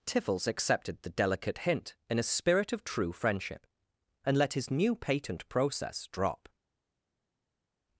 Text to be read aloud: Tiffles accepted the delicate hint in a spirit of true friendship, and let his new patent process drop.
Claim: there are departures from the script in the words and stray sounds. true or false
false